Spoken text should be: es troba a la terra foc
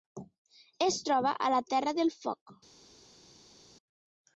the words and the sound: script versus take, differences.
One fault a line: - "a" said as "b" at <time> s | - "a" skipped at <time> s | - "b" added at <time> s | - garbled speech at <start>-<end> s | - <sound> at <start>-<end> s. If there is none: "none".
- "del" added at 2.0 s